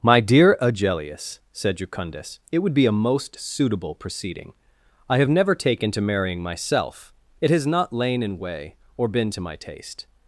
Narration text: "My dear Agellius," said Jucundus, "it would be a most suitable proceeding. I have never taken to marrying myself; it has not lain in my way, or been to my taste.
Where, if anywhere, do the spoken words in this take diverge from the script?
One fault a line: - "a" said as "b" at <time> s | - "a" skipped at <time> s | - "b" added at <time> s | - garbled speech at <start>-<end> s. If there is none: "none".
- "my" skipped at 8.4 s